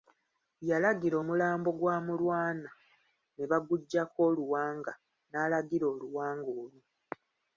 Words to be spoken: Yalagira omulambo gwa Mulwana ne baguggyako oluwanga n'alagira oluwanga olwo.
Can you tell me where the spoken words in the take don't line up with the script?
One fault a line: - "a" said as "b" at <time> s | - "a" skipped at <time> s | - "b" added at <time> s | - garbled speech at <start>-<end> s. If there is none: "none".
none